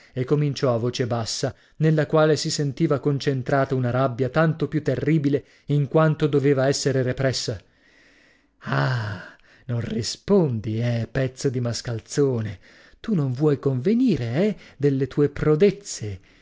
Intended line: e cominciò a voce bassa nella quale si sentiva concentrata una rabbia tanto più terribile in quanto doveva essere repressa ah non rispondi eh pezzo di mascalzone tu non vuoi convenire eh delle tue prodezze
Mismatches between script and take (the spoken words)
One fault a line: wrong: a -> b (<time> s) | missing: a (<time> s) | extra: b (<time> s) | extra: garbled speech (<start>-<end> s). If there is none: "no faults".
no faults